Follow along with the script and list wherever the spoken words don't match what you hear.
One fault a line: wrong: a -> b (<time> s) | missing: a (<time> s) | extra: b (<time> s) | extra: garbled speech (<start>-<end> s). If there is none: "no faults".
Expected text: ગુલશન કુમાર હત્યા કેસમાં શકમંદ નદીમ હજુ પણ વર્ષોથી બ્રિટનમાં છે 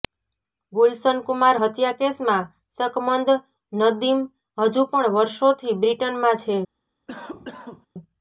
no faults